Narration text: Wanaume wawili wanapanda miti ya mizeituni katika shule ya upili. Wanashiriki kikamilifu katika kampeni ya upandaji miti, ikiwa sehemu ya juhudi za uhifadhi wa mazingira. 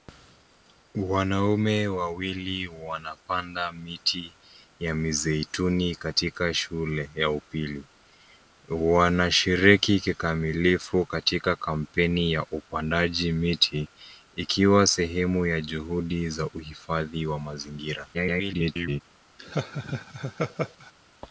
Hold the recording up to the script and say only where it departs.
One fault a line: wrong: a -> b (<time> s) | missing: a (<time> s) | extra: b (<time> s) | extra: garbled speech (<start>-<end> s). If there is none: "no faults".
extra: garbled speech (18.1-19.0 s)